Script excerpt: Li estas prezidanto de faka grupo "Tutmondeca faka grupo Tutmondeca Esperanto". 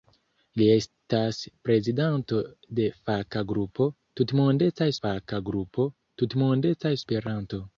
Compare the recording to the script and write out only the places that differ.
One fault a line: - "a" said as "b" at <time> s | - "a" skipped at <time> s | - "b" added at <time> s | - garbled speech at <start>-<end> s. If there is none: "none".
none